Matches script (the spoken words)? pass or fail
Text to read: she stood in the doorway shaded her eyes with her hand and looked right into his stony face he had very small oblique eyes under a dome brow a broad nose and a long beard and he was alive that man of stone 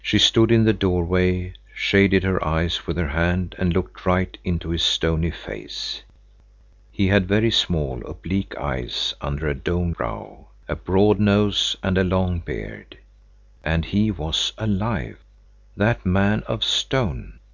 pass